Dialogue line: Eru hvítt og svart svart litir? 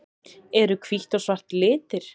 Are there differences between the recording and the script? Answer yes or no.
yes